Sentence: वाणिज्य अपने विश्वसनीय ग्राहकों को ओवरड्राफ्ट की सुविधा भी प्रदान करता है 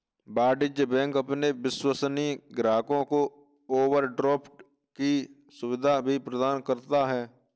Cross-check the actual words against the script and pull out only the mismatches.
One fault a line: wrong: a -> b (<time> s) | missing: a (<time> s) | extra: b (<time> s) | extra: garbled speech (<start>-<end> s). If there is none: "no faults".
extra: बैंक (0.8 s)